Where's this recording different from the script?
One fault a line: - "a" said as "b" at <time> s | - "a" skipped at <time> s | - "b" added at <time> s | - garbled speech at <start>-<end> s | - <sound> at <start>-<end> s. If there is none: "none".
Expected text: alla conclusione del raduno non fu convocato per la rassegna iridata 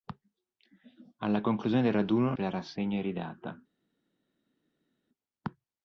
- "non fu convocato" skipped at 2.3 s